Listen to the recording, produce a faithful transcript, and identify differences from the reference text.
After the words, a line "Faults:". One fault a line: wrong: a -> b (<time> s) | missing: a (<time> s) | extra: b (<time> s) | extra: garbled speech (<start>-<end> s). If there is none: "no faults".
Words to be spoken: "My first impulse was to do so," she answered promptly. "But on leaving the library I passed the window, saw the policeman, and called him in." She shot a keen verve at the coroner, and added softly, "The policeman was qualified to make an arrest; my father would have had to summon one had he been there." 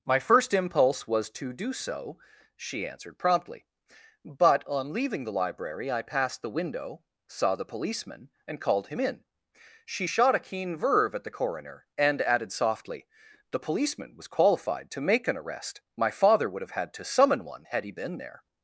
"My first impulse was to do so," she answered promptly. "But on leaving the library I passed the window, saw the policeman, and called him in." She shot a keen verve at the coroner, and added softly, "The policeman was qualified to make an arrest; my father would have had to summon one had he been there."
Faults:
no faults